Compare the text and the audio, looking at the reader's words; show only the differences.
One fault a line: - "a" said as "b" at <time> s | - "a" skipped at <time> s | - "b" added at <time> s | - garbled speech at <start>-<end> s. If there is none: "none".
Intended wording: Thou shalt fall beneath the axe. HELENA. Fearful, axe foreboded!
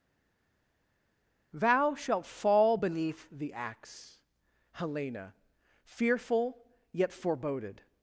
- "axe" said as "yet" at 6.9 s